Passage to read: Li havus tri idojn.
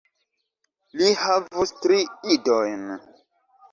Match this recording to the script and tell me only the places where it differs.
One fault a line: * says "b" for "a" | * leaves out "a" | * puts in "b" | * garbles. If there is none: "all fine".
all fine